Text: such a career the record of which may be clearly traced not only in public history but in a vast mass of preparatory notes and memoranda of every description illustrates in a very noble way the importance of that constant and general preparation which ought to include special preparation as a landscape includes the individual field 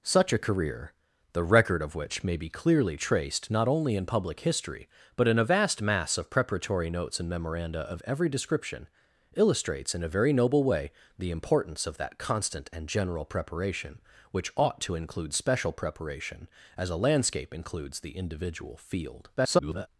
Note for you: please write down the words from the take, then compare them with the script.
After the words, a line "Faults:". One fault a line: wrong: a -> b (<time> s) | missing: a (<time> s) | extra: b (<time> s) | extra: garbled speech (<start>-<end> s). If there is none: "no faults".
such a career the record of which may be clearly traced not only in public history but in a vast mass of preparatory notes and memoranda of every description illustrates in a very noble way the importance of that constant and general preparation which ought to include special preparation as a landscape includes the individual field [garbled]
Faults:
extra: garbled speech (19.4-19.9 s)